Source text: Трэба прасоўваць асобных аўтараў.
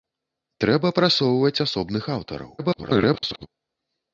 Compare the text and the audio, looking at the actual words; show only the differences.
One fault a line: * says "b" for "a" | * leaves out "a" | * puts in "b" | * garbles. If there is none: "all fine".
* garbles